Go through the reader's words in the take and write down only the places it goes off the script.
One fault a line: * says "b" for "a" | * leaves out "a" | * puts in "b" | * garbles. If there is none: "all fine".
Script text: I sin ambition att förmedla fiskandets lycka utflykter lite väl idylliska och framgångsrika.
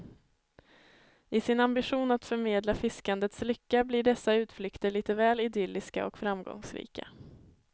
* puts in "blir dessa"